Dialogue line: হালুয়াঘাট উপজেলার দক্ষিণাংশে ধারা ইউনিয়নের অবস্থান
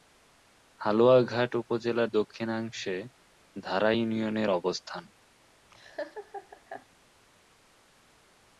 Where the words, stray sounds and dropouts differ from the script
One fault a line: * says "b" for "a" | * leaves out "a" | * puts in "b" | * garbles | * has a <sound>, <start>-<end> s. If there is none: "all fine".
* has a laugh, 5.7-6.9 s